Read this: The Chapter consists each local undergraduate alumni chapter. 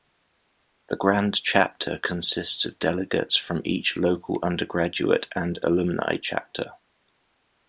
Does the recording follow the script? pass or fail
fail